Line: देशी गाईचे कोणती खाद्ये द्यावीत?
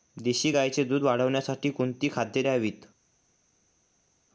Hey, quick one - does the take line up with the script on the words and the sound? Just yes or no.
no